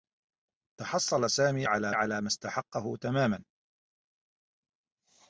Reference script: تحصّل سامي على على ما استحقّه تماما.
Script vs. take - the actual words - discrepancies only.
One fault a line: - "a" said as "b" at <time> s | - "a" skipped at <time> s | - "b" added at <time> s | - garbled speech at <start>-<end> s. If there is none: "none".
none